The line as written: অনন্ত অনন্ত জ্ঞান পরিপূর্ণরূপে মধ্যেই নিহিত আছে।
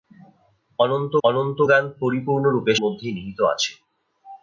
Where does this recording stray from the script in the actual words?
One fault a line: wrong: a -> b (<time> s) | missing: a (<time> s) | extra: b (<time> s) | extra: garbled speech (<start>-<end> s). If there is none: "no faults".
no faults